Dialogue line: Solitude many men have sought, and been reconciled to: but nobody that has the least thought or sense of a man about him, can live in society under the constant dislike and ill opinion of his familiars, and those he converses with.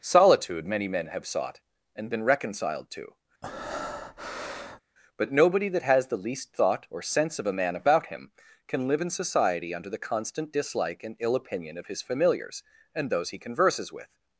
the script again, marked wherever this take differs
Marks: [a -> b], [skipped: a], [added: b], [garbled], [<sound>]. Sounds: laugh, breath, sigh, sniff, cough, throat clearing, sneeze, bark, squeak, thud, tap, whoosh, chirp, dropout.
Solitude many men have sought, and been reconciled to: [breath] but nobody that has the least thought or sense of a man about him, can live in society under the constant dislike and ill opinion of his familiars, and those he converses with.